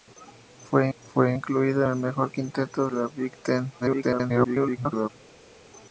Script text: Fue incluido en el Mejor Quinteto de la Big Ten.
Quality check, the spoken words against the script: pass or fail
fail